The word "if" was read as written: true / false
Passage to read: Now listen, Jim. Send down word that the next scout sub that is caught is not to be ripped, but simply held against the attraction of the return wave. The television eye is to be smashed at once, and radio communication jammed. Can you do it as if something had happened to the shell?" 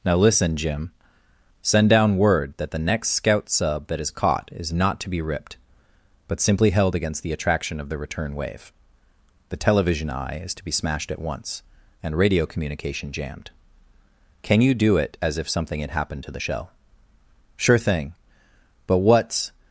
true